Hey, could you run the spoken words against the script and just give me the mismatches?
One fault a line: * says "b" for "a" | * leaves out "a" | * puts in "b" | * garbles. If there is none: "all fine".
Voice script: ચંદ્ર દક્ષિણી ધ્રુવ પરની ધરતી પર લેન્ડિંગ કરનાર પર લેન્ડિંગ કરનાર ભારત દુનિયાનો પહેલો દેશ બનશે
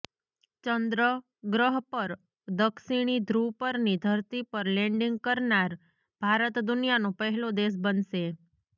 * puts in "ગ્રહ પર"
* leaves out "પર લેન્ડિંગ કરનાર"